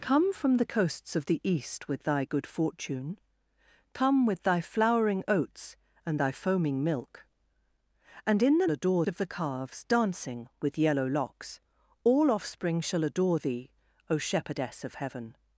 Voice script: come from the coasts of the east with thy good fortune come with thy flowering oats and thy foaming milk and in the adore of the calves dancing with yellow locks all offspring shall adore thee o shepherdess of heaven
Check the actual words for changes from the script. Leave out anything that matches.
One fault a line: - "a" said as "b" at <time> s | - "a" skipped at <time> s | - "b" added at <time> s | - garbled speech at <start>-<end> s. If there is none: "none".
none